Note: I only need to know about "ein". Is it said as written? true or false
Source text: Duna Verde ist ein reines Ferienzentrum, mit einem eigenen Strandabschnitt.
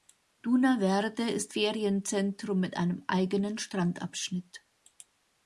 false